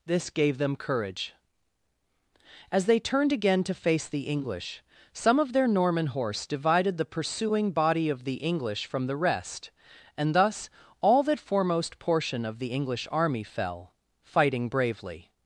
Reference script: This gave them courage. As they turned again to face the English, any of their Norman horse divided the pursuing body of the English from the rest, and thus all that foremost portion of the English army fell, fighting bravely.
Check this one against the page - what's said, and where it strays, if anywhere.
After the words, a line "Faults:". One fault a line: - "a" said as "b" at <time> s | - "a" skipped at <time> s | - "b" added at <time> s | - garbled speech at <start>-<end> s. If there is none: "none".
This gave them courage. As they turned again to face the English, some of their Norman horse divided the pursuing body of the English from the rest, and thus all that foremost portion of the English army fell, fighting bravely.
Faults:
- "any" said as "some" at 5.1 s